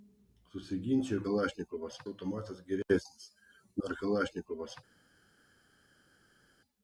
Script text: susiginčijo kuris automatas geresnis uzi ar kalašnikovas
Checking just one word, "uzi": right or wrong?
wrong